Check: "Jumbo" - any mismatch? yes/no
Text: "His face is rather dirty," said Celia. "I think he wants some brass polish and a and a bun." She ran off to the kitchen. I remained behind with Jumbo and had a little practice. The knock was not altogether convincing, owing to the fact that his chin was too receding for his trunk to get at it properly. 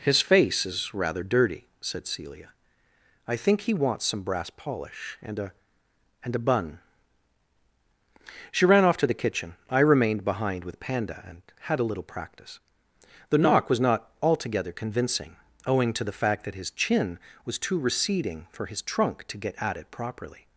yes